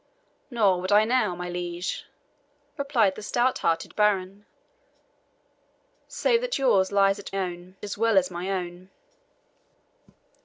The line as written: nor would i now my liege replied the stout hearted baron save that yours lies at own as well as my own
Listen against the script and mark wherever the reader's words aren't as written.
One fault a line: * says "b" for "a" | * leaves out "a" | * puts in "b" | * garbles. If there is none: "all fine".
all fine